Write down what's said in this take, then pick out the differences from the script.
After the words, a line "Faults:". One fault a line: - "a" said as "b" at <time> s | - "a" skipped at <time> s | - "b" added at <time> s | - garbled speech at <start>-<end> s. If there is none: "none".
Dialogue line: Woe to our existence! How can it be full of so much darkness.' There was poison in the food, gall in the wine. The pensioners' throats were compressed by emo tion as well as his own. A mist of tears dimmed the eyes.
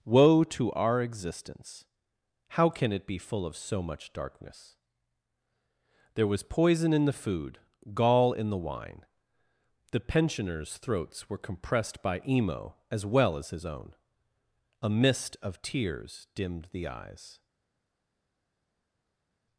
Woe to our existence! How can it be full of so much darkness.' There was poison in the food, gall in the wine. The pensioners' throats were compressed by emo as well as his own. A mist of tears dimmed the eyes.
Faults:
- "tion" skipped at 12.8 s